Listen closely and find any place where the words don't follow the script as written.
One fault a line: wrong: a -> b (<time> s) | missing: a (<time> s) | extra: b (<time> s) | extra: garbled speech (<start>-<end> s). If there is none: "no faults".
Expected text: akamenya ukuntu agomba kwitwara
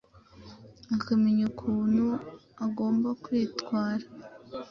no faults